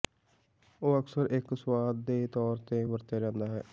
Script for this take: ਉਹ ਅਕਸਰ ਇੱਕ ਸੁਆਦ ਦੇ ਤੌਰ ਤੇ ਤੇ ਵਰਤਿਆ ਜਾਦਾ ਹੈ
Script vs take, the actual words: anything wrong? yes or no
yes